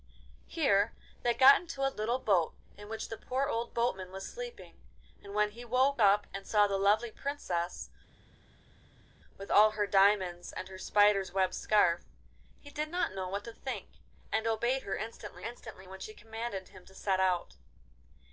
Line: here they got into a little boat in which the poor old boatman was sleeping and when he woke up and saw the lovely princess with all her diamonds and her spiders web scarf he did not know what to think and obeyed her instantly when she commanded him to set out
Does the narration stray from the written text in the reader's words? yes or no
yes